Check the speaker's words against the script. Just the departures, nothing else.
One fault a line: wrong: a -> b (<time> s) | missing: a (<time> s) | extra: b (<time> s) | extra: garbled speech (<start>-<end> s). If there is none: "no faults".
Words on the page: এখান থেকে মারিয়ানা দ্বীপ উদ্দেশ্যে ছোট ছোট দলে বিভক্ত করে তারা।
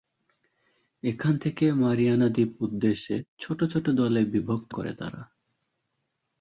no faults